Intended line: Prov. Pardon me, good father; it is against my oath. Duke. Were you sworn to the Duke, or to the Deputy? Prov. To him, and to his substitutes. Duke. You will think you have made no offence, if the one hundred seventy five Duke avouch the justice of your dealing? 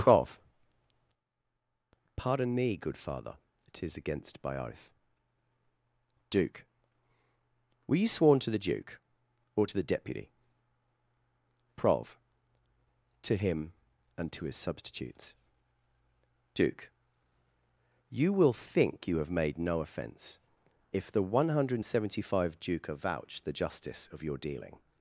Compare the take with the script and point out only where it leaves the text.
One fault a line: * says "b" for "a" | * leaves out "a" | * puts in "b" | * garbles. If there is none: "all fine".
* says "by" for "my"